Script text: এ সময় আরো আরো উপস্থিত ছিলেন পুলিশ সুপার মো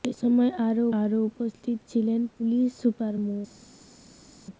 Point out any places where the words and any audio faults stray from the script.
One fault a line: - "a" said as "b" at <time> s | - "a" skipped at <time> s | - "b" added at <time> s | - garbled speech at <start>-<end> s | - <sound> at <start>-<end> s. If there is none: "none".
none